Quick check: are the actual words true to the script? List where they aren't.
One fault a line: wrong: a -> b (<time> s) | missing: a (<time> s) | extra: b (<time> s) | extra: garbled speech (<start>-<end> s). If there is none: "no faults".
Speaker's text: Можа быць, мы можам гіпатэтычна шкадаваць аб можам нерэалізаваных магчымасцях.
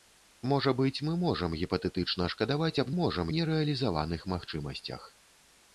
no faults